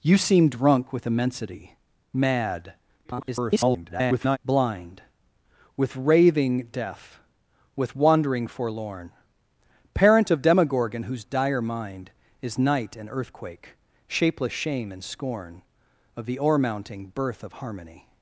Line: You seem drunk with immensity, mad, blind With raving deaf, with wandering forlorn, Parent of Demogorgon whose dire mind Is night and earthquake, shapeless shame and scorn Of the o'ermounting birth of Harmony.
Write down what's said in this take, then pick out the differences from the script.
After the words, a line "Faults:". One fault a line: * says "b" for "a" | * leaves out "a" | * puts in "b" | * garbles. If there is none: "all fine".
You seem drunk with immensity, mad, [garbled] blind With raving deaf, with wandering forlorn, Parent of Demogorgon whose dire mind Is night and earthquake, shapeless shame and scorn Of the o'ermounting birth of Harmony.
Faults:
* garbles